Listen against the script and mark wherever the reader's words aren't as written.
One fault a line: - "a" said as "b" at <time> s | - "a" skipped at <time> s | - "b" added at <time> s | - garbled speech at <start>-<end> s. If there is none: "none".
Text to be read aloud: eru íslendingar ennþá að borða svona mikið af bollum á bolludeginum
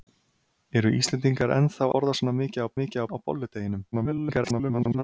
- "að" skipped at 1.9 s
- "bollum" said as "mikið" at 2.8 s
- garbled speech at 3.9-5.0 s